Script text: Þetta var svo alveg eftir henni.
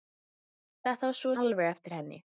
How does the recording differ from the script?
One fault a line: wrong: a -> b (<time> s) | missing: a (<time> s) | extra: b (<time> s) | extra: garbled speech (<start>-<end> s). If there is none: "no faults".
no faults